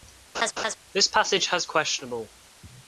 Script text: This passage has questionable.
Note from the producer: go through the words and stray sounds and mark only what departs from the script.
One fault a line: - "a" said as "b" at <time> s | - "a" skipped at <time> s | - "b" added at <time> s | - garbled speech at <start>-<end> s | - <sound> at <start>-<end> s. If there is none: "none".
- laugh at 0.3-0.8 s